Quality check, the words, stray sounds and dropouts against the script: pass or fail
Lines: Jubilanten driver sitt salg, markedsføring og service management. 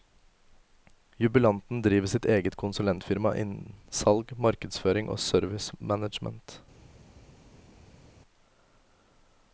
fail